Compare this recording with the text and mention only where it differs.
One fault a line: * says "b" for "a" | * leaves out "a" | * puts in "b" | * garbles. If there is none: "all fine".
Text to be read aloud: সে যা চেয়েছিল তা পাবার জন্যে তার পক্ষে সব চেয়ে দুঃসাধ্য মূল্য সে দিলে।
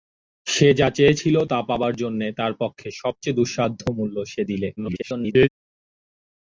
* garbles